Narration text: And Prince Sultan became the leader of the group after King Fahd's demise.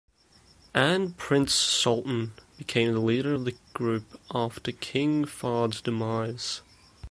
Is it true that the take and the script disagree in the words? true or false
false